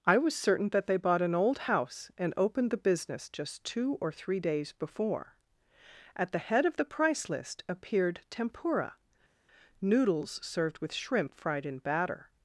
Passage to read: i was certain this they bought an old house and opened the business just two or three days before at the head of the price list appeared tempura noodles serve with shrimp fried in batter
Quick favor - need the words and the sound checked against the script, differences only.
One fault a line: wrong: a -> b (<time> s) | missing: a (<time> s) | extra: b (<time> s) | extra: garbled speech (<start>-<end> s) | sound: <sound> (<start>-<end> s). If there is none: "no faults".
wrong: this -> that (0.7 s)
wrong: serve -> served (10.4 s)